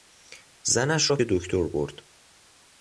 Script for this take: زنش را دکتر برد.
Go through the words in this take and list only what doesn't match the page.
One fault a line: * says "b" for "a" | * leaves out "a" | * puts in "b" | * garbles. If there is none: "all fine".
all fine